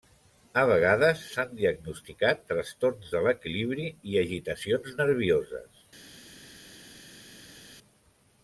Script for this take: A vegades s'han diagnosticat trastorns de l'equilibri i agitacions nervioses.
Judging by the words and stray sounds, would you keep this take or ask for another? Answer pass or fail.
pass